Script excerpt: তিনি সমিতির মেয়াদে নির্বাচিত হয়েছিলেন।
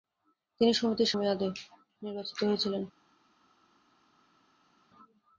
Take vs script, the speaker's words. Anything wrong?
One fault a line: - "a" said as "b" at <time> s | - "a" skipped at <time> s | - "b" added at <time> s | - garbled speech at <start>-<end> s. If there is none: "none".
none